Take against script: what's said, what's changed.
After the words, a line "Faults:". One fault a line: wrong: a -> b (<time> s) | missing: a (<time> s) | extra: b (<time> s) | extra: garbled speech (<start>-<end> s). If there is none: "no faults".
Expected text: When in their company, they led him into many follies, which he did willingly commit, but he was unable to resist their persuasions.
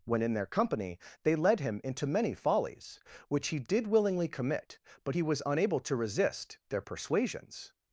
When in their company, they led him into many follies, which he did willingly commit, but he was unable to resist their persuasions.
Faults:
no faults